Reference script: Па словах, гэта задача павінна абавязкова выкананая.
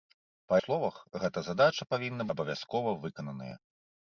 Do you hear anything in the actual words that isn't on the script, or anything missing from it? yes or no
no